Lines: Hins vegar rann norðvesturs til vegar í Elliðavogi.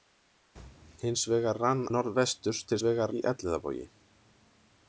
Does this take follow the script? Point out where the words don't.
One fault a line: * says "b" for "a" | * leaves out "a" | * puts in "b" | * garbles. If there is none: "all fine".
all fine